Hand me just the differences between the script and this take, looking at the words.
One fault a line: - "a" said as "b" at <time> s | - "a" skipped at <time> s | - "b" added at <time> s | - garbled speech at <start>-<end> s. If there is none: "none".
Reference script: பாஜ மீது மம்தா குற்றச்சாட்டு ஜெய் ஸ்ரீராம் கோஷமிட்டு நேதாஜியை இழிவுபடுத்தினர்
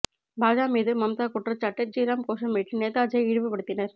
- "ஜெய்" skipped at 1.9 s